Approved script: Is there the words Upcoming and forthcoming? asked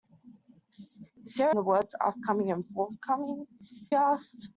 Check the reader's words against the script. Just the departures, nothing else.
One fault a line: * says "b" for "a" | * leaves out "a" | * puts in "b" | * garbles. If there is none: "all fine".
all fine